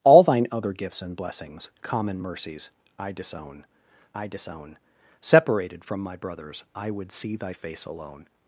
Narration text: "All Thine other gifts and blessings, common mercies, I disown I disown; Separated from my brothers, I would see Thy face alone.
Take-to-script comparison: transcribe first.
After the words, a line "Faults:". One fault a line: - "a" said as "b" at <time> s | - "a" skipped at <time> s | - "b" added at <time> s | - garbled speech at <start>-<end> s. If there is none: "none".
"All Thine other gifts and blessings, common mercies, I disown I disown; Separated from my brothers, I would see Thy face alone.
Faults:
none